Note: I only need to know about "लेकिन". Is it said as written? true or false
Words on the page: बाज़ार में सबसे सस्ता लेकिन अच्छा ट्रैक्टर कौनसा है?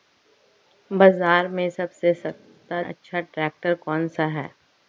false